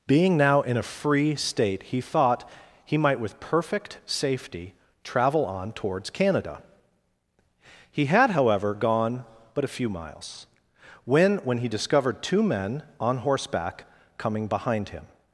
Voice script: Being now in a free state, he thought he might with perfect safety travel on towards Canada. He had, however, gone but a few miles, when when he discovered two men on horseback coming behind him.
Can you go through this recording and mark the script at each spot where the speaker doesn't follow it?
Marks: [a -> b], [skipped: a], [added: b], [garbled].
Being now in a free state, he thought he might with perfect safety travel on towards Canada. He had, however, gone but a few miles, when when he discovered two men on horseback coming behind him.